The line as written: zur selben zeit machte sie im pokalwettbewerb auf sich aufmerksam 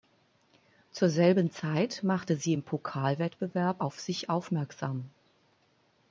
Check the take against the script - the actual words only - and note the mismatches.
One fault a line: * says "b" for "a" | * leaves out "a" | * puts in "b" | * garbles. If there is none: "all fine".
all fine